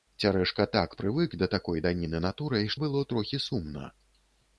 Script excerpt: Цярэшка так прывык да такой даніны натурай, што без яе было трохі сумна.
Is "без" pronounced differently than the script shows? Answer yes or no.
yes